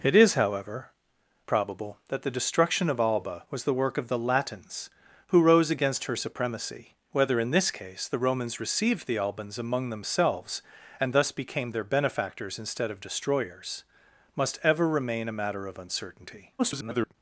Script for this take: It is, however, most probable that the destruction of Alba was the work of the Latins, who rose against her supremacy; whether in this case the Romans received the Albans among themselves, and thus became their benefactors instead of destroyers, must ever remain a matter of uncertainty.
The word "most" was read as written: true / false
false